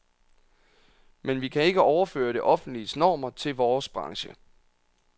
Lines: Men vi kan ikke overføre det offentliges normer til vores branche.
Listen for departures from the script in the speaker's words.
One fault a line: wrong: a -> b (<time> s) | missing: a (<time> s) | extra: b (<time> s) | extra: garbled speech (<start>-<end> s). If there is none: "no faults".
no faults